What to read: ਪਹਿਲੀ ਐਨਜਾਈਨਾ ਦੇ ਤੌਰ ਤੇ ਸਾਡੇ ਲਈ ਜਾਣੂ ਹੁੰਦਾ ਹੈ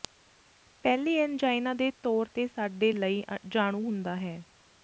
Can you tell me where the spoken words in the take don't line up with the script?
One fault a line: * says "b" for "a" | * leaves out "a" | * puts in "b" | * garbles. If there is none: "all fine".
all fine